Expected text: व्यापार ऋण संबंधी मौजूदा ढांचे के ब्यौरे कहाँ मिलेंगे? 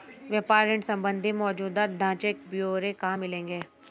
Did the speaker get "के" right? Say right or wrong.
wrong